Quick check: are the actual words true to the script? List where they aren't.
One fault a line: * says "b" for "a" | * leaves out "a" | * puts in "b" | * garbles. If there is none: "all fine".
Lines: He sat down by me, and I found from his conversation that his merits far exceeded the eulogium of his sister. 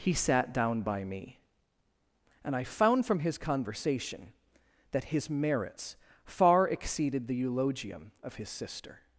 all fine